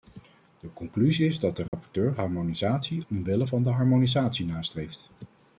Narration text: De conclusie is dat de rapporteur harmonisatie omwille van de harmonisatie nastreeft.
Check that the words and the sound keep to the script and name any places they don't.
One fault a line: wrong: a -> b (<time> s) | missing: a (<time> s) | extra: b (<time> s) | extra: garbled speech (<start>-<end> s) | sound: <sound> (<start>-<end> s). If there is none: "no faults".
sound: dropout (1.7-1.7 s)